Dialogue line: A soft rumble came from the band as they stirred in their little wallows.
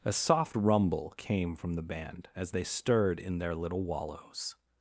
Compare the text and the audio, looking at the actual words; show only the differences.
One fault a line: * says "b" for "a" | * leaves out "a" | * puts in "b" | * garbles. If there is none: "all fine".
all fine